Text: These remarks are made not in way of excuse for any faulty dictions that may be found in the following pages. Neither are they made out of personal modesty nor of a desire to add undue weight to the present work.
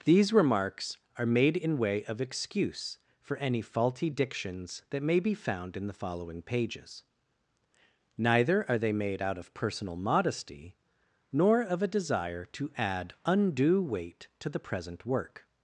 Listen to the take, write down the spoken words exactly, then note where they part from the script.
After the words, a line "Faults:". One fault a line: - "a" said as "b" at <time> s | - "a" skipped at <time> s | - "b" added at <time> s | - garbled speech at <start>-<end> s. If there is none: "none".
These remarks are made in way of excuse for any faulty dictions that may be found in the following pages. Neither are they made out of personal modesty nor of a desire to add undue weight to the present work.
Faults:
- "not" skipped at 1.6 s